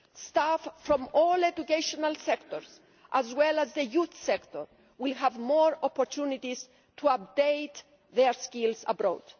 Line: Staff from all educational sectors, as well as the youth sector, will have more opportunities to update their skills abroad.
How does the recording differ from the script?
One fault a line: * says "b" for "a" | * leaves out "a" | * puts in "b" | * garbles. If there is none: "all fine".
all fine